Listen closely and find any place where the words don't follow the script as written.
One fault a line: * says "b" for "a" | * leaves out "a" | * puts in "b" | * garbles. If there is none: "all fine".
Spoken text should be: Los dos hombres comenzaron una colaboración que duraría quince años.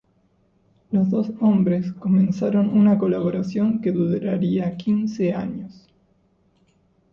all fine